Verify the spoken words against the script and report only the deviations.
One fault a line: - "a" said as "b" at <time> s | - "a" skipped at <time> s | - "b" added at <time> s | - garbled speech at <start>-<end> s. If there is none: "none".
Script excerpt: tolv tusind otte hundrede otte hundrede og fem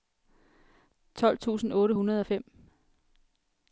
- "otte hundrede" skipped at 2.2 s